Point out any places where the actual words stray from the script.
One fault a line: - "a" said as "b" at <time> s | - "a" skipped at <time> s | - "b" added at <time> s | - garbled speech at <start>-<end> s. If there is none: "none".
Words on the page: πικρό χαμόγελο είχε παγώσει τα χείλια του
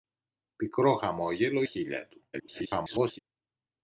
- "είχε παγώσει τα" skipped at 1.6 s
- garbled speech at 2.3-3.2 s